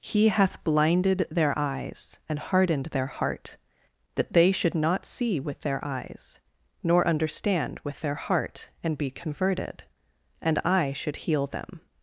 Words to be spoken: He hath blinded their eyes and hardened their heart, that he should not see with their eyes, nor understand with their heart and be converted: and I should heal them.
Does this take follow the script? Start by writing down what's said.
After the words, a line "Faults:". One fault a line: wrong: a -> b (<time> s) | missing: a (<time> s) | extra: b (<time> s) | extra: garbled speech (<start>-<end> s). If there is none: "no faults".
He hath blinded their eyes and hardened their heart, that they should not see with their eyes, nor understand with their heart and be converted: and I should heal them.
Faults:
wrong: he -> they (4.3 s)